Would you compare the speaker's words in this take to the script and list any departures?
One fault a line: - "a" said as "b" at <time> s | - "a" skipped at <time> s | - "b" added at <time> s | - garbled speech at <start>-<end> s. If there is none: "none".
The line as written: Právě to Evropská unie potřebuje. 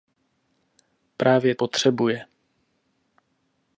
- "to Evropská unie" skipped at 1.6 s